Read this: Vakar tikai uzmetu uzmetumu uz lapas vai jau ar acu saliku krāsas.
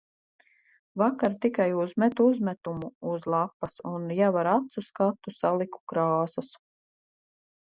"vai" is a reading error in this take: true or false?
true